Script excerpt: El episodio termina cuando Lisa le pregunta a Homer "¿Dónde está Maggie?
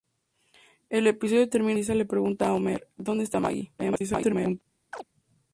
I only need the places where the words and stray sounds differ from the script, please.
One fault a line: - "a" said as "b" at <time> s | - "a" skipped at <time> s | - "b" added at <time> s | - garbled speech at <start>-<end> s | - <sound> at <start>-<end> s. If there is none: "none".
- garbled speech at 3.8-4.6 s
- chirp at 4.9-5.0 s